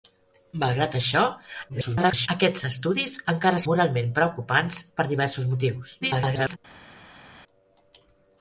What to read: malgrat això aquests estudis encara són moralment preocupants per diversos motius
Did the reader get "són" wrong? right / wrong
wrong